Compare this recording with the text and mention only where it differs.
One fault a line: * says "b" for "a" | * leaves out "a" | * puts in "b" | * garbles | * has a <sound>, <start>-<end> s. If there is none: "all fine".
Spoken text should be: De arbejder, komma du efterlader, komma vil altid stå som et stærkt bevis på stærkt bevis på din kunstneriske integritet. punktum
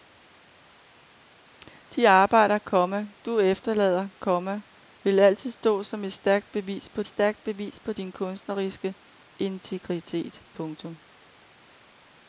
all fine